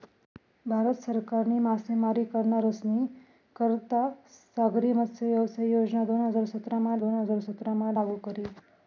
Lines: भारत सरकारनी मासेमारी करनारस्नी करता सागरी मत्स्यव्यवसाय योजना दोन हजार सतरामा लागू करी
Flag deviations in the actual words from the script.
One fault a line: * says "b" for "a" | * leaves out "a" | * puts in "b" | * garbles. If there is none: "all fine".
* puts in "दोन हजार सतरामा"